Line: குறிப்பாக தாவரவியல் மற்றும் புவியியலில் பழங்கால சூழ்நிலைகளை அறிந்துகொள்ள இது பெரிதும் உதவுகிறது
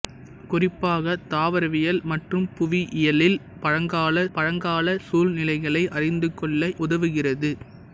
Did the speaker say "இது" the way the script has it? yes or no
no